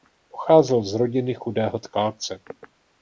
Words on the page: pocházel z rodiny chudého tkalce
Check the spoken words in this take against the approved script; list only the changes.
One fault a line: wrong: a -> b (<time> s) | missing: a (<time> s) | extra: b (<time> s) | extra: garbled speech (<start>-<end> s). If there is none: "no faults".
no faults